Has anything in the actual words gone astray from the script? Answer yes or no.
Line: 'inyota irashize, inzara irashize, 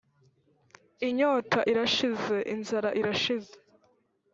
no